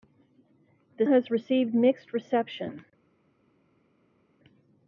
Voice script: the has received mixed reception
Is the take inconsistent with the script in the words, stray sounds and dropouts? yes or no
no